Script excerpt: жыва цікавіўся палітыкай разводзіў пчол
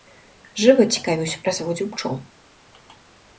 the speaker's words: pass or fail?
fail